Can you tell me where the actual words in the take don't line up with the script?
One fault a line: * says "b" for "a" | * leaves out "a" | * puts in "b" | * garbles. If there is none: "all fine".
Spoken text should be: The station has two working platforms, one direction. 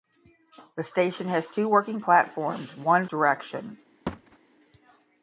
all fine